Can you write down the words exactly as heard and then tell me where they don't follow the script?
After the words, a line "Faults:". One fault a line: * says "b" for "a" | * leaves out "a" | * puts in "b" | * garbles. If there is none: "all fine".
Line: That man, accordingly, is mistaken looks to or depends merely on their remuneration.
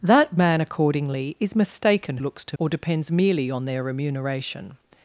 That man, accordingly, is mistaken looks to or depends merely on their remuneration.
Faults:
all fine